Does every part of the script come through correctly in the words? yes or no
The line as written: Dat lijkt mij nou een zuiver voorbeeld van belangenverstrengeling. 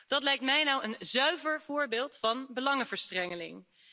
yes